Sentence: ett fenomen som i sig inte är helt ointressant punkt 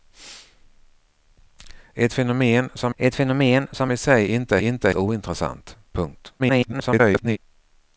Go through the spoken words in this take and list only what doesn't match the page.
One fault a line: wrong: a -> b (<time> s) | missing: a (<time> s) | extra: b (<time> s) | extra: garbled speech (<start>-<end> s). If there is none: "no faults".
extra: ett fenomen som (3.0 s)
wrong: helt -> inte (4.6 s)
extra: garbled speech (6.4-7.4 s)